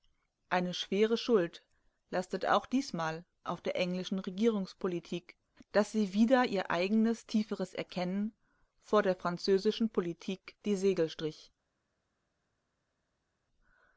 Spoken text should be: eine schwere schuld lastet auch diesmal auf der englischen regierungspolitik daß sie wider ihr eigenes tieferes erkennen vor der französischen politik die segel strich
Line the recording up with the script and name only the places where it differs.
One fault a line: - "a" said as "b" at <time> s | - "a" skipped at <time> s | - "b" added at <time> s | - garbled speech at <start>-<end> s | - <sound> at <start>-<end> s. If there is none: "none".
none